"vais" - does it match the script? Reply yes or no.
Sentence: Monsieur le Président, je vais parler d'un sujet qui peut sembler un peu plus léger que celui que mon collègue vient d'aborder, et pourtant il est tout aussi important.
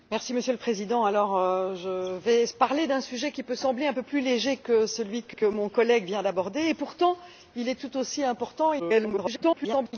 yes